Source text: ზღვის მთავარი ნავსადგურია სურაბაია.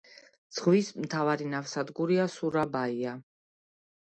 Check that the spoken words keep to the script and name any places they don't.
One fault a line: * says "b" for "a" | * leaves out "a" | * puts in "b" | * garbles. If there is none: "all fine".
all fine